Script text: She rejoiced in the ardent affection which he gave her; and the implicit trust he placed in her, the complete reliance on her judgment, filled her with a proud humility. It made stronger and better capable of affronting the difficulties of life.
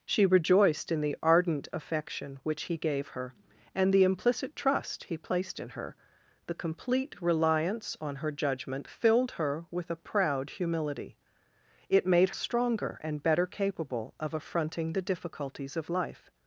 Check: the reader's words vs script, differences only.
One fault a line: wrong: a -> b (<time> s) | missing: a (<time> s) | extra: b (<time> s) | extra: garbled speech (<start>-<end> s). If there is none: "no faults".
no faults